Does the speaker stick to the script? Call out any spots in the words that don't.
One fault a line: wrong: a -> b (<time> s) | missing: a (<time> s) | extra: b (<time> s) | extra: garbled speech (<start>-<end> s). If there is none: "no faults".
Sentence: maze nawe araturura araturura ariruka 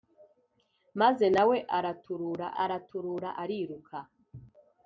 no faults